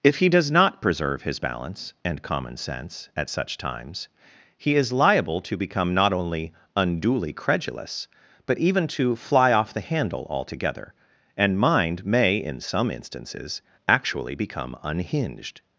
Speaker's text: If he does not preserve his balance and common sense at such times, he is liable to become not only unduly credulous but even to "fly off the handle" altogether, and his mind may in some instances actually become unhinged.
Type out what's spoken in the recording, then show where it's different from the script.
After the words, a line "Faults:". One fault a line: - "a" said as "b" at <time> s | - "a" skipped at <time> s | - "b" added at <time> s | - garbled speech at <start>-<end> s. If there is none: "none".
If he does not preserve his balance and common sense at such times, he is liable to become not only unduly credulous but even to "fly off the handle" altogether, and mind may in some instances actually become unhinged.
Faults:
- "his" skipped at 11.6 s